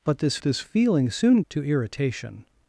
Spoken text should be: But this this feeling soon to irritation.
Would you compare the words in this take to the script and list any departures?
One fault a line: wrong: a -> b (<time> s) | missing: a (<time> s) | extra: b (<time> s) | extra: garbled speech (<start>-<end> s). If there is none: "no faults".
no faults